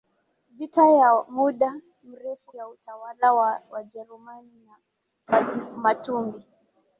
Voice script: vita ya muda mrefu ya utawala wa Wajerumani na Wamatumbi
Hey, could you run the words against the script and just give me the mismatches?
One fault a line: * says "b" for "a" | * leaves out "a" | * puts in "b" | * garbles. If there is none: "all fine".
all fine